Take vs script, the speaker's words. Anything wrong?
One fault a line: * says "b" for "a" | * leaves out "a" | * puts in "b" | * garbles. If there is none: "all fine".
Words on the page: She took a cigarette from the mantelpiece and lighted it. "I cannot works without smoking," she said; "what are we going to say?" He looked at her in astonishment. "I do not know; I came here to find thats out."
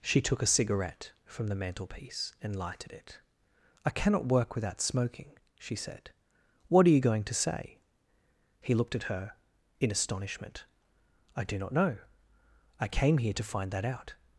* says "work" for "works"
* says "you" for "we"
* says "that" for "thats"